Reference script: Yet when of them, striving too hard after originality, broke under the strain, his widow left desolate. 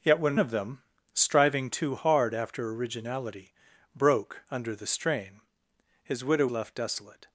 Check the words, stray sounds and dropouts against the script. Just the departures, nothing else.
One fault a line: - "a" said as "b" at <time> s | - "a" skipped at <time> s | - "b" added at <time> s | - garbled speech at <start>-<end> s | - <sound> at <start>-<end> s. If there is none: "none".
none